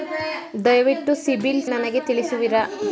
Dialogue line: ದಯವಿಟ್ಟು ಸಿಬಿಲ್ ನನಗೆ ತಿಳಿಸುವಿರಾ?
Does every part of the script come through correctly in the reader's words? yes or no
yes